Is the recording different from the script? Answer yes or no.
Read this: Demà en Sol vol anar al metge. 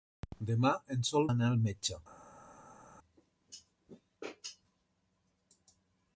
yes